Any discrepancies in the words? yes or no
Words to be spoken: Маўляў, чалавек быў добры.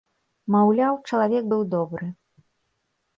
no